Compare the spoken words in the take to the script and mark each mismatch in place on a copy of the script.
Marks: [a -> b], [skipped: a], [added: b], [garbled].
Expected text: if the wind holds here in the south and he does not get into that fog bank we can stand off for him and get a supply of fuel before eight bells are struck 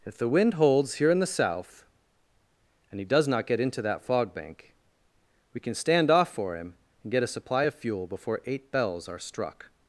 if the wind holds here in the south and he does not get into that fog bank we can stand off for him and get a supply of fuel before eight bells are struck